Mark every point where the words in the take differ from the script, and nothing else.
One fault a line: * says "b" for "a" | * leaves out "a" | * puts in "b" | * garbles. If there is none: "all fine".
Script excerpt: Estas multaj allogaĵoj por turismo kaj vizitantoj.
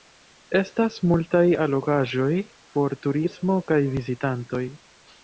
all fine